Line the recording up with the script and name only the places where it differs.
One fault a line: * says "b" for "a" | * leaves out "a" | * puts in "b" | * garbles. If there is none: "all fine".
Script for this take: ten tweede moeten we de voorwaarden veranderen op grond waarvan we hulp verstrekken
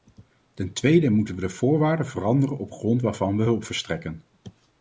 all fine